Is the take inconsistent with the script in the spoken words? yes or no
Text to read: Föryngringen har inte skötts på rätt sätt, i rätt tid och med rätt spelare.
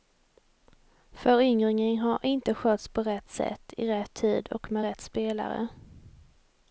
no